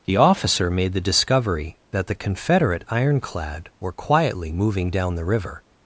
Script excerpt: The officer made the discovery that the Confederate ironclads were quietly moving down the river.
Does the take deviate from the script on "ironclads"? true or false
true